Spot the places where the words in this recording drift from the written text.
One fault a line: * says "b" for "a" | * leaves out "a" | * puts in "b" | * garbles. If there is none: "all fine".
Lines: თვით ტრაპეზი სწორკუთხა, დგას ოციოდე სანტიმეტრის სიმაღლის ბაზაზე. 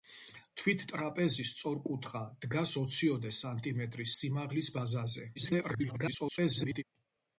* garbles